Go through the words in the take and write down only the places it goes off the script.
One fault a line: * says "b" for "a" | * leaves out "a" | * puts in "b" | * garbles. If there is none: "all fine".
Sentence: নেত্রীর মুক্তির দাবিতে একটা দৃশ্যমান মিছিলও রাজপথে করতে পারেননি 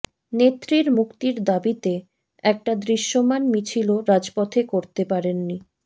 all fine